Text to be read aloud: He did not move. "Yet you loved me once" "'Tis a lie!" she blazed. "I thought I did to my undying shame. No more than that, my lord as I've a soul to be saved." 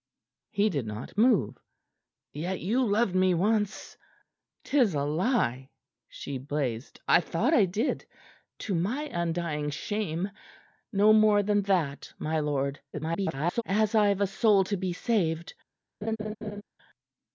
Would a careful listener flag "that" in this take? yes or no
no